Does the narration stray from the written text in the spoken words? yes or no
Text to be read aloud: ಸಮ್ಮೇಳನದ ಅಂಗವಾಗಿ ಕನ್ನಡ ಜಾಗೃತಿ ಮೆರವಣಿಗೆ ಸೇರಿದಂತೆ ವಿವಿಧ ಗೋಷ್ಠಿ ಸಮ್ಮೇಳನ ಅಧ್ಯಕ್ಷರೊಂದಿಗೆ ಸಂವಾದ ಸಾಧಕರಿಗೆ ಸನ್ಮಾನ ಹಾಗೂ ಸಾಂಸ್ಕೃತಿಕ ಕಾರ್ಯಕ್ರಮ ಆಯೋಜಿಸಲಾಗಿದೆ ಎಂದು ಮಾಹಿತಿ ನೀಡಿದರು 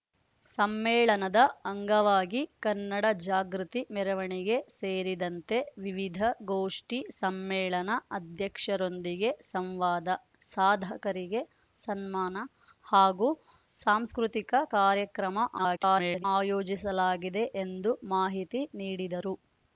yes